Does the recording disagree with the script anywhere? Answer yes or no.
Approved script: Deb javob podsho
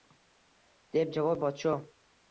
no